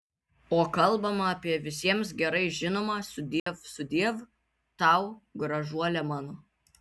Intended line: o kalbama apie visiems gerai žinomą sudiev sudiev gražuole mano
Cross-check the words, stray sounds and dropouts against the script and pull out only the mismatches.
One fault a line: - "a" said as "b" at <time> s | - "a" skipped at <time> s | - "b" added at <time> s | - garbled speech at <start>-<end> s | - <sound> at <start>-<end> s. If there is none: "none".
- dropout at 3.4-3.5 s
- "tau" added at 4.8 s